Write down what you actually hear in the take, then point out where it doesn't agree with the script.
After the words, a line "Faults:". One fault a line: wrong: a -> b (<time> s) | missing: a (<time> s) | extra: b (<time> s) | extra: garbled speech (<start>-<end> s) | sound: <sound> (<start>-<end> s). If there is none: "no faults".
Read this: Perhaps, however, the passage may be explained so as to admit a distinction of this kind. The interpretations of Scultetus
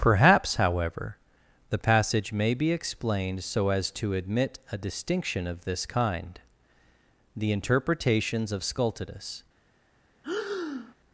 Perhaps, however, the passage may be explained so as to admit a distinction of this kind. The interpretations of Scultetus
Faults:
sound: breath (10.2-10.9 s)